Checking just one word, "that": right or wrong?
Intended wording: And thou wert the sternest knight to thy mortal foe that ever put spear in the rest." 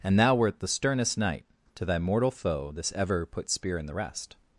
wrong